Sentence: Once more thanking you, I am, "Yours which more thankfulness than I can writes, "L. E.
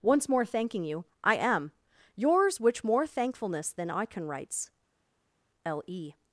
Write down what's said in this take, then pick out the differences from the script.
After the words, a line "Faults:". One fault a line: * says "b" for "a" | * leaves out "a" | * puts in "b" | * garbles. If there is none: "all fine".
Once more thanking you, I am, "Yours which more thankfulness than I can writes, "L. E.
Faults:
all fine